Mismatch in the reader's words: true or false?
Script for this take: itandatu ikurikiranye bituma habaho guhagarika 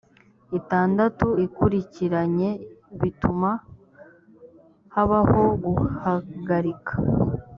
false